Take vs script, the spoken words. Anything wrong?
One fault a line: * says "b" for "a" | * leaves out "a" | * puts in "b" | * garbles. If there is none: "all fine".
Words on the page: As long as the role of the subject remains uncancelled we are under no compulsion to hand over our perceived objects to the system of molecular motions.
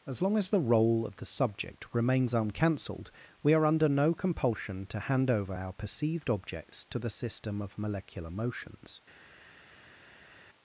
all fine